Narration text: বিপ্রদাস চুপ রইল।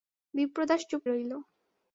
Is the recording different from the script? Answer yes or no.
no